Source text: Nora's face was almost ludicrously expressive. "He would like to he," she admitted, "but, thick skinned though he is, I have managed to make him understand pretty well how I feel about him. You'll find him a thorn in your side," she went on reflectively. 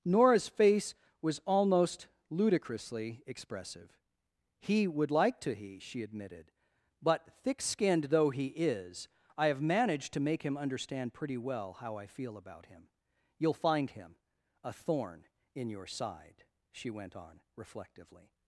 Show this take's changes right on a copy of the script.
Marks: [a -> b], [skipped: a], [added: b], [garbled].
Nora's face was almost ludicrously expressive. "He would like to he," she admitted, "but, thick skinned though he is, I have managed to make him understand pretty well how I feel about him. You'll find him a thorn in your side," she went on reflectively.